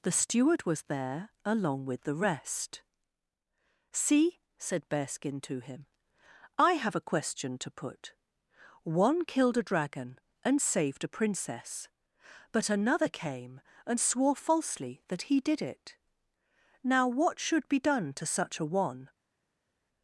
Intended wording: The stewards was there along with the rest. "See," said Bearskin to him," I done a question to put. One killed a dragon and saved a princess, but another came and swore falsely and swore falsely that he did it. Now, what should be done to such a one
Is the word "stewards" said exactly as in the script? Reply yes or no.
no